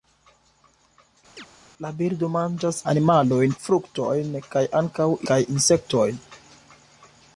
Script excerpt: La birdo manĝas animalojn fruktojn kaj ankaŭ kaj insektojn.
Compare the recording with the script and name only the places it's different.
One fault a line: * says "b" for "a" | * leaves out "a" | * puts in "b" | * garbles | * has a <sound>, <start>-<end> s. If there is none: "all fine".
* has a chirp, 1.4-1.5 s